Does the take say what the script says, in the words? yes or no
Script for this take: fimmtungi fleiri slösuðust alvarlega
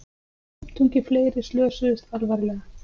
yes